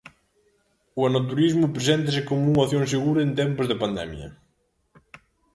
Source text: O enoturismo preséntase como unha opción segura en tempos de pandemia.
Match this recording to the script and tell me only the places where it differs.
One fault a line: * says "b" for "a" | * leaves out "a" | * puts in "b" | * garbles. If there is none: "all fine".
all fine